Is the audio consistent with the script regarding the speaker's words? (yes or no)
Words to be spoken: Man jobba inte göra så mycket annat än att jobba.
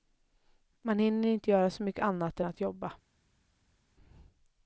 no